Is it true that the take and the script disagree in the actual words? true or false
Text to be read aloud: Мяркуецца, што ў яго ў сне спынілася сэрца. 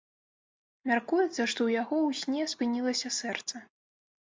false